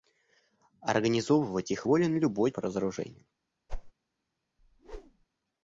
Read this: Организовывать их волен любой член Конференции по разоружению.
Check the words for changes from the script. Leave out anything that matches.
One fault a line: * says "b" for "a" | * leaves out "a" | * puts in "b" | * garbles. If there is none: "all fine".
* leaves out "член Конференции"